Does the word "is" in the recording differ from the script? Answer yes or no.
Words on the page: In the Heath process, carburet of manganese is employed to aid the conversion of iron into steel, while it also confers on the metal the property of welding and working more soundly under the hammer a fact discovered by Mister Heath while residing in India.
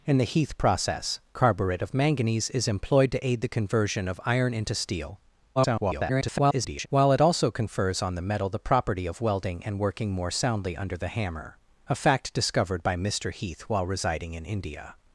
no